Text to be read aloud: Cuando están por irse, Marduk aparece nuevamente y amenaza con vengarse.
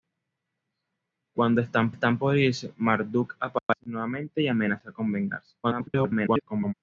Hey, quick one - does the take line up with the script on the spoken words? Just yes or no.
no